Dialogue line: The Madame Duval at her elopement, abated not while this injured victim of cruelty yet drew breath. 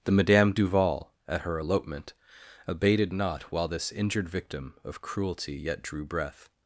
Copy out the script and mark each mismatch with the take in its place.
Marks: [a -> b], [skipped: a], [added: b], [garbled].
The Madame Duval at her elopement, abated not while this injured victim of cruelty yet drew breath.